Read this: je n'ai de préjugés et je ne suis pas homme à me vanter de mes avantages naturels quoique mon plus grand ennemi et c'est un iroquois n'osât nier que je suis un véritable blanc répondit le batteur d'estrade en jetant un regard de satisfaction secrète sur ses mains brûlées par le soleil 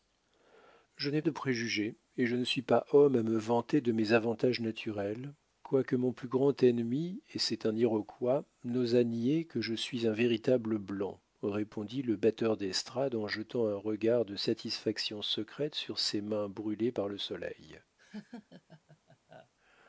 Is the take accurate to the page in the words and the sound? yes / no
no